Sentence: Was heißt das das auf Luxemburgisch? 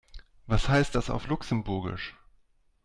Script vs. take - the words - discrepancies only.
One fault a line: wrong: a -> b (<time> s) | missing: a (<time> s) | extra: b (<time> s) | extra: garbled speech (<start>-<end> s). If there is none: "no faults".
missing: das (1.1 s)